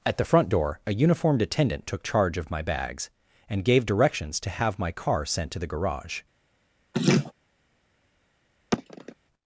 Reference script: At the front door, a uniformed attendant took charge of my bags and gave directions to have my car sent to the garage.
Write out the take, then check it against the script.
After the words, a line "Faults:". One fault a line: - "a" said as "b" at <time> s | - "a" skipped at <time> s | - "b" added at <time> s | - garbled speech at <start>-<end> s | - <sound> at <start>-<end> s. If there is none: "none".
At the front door, a uniformed attendant took charge of my bags and gave directions to have my car sent to the garage.
Faults:
- laugh at 6.9-7.3 s
- sigh at 8.7-9.2 s